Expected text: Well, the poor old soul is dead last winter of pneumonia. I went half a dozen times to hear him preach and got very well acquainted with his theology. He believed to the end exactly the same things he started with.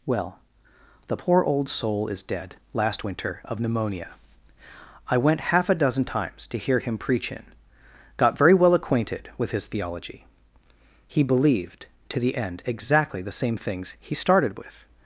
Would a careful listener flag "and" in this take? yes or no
yes